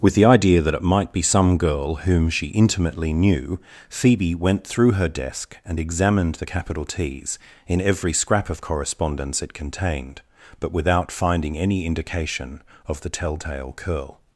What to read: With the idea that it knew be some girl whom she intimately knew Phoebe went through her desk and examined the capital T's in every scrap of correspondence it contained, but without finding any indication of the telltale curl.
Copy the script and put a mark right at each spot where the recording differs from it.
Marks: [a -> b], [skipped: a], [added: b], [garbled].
With the idea that it [knew -> might] be some girl whom she intimately knew Phoebe went through her desk and examined the capital T's in every scrap of correspondence it contained, but without finding any indication of the telltale curl.